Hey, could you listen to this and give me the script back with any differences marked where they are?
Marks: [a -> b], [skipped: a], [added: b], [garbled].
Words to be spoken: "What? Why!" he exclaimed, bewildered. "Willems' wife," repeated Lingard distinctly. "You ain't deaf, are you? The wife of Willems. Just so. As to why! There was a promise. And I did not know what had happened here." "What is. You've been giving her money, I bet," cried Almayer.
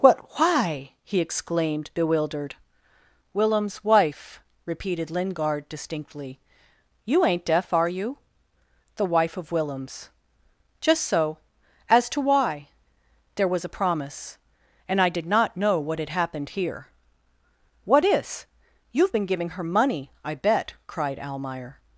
"What? Why!" he exclaimed, bewildered. "Willems' wife," repeated Lingard distinctly. "You ain't deaf, are you? The wife of Willems. Just so. As to why! There was a promise. And I did not know what had happened here." "What is. You've been giving her money, I bet," cried Almayer.